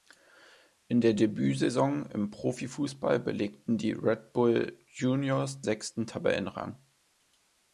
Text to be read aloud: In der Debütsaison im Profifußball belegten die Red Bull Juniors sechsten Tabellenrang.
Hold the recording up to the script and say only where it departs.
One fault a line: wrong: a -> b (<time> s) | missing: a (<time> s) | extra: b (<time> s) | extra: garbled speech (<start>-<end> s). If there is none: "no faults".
no faults